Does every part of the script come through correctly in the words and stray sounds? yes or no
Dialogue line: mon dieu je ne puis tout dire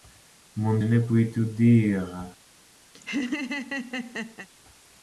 no